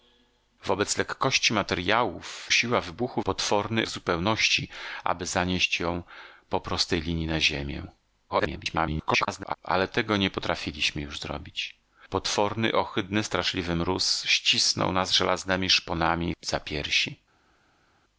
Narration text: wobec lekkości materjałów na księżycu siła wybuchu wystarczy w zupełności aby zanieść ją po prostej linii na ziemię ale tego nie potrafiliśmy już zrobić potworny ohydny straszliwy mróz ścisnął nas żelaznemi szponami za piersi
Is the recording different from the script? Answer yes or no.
yes